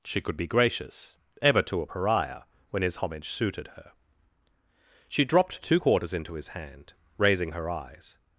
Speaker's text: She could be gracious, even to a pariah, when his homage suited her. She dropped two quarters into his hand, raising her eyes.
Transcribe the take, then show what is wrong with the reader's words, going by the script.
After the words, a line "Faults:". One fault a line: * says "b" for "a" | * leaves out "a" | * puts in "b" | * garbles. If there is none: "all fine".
She could be gracious, ever to a pariah, when his homage suited her. She dropped two quarters into his hand, raising her eyes.
Faults:
* says "ever" for "even"